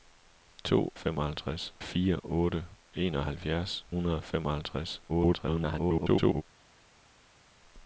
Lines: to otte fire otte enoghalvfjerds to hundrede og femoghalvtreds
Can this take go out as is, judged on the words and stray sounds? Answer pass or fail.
fail